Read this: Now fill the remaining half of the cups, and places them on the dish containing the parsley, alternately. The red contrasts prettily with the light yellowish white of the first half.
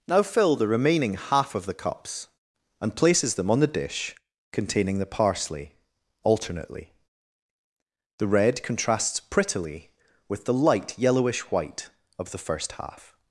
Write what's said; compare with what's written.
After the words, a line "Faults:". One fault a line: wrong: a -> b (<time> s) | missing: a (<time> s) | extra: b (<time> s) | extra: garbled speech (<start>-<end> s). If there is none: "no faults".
Now fill the remaining half of the cups, and places them on the dish containing the parsley, alternately. The red contrasts prettily with the light yellowish white of the first half.
Faults:
no faults